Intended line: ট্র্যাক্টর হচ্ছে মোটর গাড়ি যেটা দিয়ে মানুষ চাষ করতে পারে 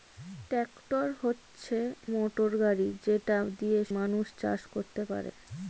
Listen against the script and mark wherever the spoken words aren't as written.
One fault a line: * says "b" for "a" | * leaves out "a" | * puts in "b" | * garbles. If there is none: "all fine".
all fine